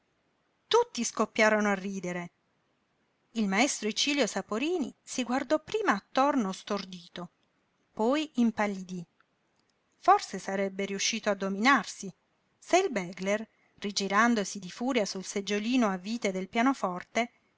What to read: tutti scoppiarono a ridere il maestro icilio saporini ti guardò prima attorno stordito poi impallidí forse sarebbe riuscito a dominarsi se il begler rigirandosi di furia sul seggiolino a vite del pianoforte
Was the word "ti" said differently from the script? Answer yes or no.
yes